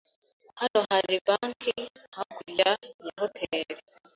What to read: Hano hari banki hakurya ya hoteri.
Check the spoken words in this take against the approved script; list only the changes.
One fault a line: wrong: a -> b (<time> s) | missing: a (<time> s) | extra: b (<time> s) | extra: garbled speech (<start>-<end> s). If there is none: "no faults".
no faults